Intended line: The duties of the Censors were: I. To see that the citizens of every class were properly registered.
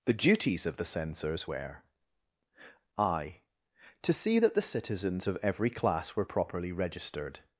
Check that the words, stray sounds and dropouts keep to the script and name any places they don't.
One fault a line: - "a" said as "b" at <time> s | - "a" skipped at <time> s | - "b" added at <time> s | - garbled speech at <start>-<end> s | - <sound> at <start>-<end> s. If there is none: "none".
none